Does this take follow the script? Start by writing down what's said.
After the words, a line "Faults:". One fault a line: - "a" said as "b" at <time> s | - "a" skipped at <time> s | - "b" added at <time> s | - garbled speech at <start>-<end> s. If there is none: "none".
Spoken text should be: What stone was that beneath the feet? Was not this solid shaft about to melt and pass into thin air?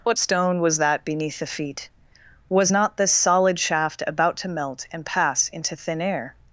What stone was that beneath the feet? Was not this solid shaft about to melt and pass into thin air?
Faults:
none